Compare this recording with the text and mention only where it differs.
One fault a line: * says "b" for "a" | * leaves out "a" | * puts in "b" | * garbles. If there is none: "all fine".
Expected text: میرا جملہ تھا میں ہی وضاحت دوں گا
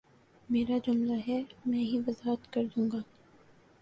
* says "ہے" for "تھا"
* puts in "کر"